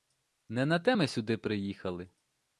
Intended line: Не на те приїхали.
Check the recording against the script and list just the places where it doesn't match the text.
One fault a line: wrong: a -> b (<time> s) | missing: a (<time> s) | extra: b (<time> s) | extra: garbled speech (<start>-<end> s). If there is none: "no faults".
extra: ми сюди (0.9 s)